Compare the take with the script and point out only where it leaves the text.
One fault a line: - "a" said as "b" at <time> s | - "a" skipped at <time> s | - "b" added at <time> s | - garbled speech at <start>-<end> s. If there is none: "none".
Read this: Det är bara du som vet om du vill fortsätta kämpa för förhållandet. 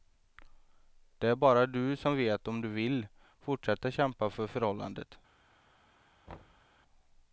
none